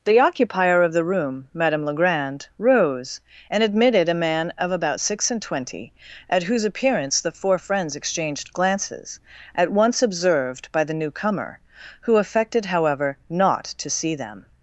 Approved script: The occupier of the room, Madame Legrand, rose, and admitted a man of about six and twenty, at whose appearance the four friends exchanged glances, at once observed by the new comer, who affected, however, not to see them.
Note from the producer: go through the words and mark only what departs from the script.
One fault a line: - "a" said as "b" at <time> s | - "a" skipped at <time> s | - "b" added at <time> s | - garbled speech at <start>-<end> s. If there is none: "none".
none